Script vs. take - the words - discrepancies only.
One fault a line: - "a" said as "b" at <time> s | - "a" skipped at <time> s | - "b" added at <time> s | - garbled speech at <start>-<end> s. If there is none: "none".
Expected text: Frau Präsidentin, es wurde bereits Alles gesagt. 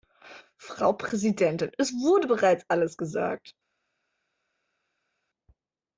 none